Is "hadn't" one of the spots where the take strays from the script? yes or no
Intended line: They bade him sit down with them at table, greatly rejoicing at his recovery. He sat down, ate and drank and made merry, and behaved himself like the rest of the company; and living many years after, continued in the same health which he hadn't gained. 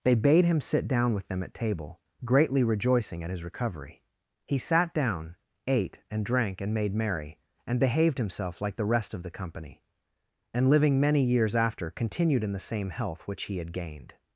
yes